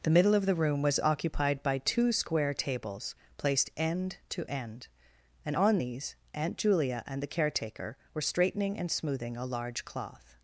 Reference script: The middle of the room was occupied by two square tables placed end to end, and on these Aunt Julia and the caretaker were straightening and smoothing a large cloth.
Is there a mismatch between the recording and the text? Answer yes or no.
no